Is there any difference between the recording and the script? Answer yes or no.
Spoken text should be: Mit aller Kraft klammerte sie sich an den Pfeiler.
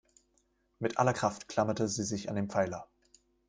no